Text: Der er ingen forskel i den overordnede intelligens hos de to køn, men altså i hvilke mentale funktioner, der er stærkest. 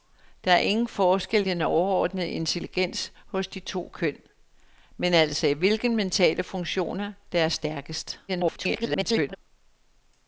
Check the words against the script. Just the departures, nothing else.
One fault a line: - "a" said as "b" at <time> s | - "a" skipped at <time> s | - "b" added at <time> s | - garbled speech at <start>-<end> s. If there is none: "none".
- "i" skipped at 1.4 s
- garbled speech at 8.3-9.4 s